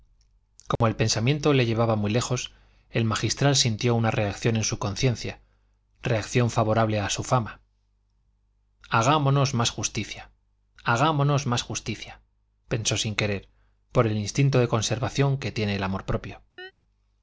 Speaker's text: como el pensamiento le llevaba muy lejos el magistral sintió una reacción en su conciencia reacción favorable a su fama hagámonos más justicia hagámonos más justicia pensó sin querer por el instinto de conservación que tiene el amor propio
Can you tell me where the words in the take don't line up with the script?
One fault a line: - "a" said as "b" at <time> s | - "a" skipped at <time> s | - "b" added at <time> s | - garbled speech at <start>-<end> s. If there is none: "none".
none